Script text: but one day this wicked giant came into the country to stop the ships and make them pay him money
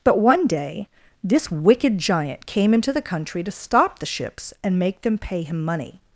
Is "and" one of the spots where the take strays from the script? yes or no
no